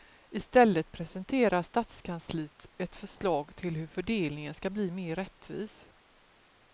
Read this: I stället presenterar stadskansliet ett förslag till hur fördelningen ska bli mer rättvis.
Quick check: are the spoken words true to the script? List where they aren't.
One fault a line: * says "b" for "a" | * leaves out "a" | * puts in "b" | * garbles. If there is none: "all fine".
all fine